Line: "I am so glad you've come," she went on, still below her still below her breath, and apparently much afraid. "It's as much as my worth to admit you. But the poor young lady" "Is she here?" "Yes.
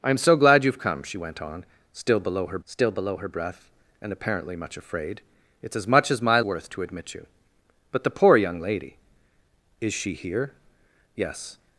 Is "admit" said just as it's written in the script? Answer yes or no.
yes